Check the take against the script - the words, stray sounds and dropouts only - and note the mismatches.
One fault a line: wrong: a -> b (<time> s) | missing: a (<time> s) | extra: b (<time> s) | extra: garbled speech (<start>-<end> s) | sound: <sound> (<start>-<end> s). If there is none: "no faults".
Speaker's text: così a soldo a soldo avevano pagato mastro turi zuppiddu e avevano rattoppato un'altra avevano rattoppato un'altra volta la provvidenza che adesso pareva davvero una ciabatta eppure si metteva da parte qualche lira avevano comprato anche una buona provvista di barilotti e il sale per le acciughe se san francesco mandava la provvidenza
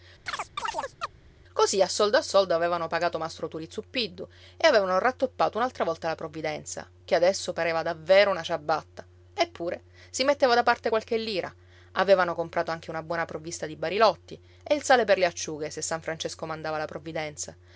sound: chirp (0.3-1.1 s)
missing: avevano rattoppato un'altra (5.8 s)